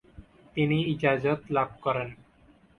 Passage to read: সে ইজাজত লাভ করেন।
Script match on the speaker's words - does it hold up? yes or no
no